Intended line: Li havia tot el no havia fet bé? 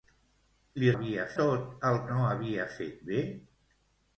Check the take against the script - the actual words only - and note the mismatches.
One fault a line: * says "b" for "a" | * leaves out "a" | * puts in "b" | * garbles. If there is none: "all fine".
all fine